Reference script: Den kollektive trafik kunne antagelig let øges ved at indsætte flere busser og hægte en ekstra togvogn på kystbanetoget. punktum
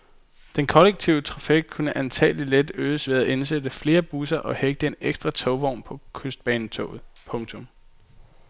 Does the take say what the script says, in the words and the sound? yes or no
yes